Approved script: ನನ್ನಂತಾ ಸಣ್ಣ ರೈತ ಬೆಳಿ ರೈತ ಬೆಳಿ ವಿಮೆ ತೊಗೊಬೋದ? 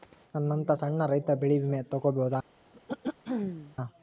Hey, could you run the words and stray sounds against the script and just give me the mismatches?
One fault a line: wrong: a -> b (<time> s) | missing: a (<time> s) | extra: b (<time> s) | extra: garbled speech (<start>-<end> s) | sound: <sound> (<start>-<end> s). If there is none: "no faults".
missing: ರೈತ ಬೆಳಿ (1.6 s)
sound: throat clearing (2.7-3.8 s)